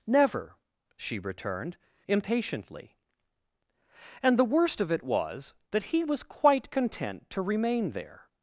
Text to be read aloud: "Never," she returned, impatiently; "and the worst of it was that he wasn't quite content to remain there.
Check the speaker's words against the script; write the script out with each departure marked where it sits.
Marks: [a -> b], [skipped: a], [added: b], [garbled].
"Never," she returned, impatiently; "and the worst of it was that he [wasn't -> was] quite content to remain there.